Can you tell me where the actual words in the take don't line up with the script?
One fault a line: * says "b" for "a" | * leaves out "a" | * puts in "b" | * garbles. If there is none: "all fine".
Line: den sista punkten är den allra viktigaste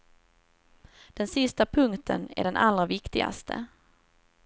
all fine